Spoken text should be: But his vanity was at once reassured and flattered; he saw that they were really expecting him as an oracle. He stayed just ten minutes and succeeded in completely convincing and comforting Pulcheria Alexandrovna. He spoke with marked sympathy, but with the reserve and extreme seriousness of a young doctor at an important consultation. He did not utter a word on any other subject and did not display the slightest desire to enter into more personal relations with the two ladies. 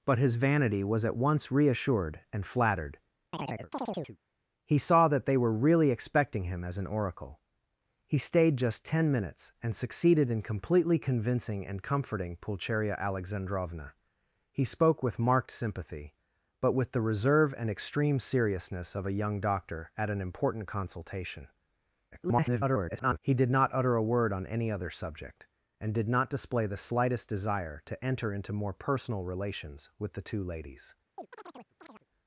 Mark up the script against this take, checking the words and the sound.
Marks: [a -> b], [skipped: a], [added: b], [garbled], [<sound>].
But his vanity was at once reassured and flattered; [chirp] he saw that they were really expecting him as an oracle. He stayed just ten minutes and succeeded in completely convincing and comforting Pulcheria Alexandrovna. He spoke with marked sympathy, but with the reserve and extreme seriousness of a young doctor at an important consultation. [garbled] He did not utter a word on any other subject and did not display the slightest desire to enter into more personal relations with the two ladies. [chirp]